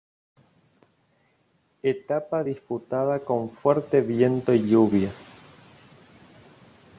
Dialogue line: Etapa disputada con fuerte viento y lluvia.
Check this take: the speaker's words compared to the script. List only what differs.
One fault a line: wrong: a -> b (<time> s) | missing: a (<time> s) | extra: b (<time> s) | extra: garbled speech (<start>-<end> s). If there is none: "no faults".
no faults